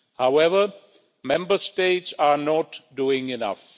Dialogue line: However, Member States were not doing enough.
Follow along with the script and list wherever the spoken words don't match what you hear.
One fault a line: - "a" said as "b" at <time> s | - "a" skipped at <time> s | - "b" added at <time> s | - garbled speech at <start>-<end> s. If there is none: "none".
- "were" said as "are" at 2.2 s